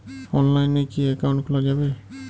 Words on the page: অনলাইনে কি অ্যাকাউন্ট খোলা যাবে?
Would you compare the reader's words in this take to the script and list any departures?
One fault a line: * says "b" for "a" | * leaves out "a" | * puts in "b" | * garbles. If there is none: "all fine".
all fine